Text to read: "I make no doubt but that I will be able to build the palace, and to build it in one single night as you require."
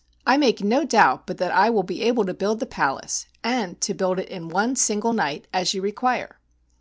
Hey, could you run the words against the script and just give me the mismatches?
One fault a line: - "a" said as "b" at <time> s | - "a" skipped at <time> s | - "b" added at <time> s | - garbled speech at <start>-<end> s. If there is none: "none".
none